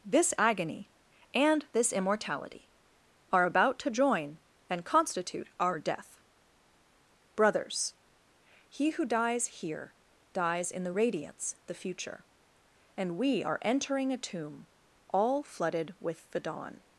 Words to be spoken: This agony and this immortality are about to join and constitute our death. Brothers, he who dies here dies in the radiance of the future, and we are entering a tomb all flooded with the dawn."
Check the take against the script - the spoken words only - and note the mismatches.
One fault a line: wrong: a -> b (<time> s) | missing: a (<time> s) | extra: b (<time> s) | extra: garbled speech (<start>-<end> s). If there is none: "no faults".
missing: of (11.6 s)